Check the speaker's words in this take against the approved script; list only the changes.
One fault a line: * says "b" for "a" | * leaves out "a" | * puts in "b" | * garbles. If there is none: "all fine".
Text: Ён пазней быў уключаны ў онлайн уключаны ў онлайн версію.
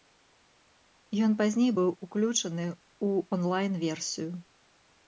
* leaves out "уключаны ў онлайн"